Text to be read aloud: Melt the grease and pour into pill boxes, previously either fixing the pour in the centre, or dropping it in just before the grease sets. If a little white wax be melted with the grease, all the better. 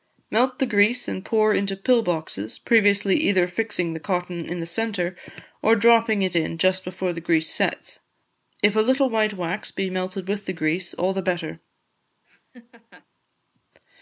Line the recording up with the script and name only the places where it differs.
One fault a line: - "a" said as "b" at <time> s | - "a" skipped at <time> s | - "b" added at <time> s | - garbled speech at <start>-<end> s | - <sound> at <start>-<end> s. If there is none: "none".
- "pour" said as "cotton" at 4.0 s
- laugh at 12.2-13.1 s